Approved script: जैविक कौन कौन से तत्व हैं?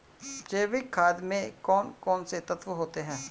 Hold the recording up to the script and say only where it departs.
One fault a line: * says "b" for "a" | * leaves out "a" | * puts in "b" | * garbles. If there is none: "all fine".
* puts in "खाद में"
* puts in "होते"